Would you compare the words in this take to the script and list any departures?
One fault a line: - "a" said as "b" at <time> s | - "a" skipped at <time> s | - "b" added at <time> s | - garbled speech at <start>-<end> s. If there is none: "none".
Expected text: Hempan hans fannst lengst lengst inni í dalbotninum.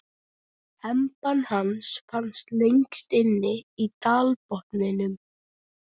- "lengst" skipped at 3.1 s